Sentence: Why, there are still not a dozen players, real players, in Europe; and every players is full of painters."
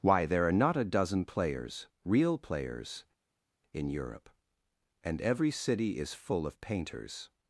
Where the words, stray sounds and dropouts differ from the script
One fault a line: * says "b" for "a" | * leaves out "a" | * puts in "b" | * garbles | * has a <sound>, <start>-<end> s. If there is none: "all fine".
* leaves out "still"
* says "city" for "players"